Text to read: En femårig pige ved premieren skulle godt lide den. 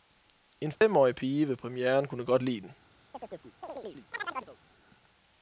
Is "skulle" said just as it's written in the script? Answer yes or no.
no